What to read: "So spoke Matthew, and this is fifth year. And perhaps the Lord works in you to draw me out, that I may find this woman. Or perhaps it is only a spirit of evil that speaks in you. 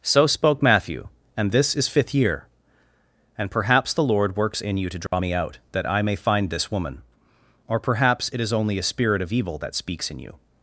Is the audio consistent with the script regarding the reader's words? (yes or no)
yes